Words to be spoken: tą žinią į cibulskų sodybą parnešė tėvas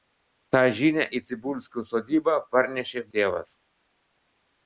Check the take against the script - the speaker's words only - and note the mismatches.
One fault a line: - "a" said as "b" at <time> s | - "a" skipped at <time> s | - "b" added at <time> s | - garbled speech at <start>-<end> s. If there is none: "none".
none